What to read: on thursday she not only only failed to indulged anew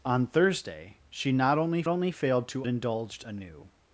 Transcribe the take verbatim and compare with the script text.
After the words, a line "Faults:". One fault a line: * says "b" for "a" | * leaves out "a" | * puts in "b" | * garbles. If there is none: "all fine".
on thursday she not only only failed to indulged anew
Faults:
all fine